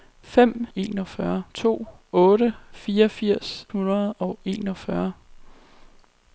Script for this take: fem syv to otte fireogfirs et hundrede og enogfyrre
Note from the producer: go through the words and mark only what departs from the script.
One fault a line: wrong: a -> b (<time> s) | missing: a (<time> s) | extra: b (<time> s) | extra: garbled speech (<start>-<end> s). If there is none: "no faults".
wrong: syv -> enogfyrre (0.7 s)
missing: et (3.7 s)